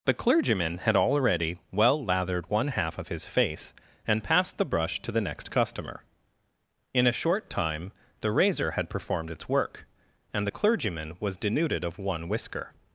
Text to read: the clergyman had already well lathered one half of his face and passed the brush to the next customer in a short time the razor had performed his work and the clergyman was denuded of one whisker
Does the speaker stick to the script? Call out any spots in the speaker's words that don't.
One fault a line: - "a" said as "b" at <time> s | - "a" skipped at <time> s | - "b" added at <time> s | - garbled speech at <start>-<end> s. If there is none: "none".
- "his" said as "its" at 9.3 s